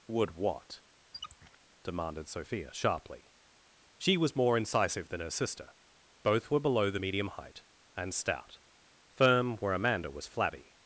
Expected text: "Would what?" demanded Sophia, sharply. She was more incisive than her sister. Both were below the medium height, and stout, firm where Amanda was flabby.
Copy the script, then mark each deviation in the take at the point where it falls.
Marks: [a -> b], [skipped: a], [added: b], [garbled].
"Would what?" demanded Sophia, sharply. She was more incisive than her sister. Both were below the medium height, and stout, firm where Amanda was flabby.